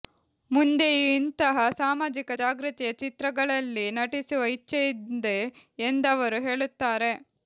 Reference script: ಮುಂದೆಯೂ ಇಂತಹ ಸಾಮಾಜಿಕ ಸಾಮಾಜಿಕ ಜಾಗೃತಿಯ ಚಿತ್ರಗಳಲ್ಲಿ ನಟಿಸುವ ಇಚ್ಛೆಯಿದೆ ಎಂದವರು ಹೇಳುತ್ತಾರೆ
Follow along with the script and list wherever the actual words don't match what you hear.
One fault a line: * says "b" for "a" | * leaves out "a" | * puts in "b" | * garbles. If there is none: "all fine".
* leaves out "ಸಾಮಾಜಿಕ"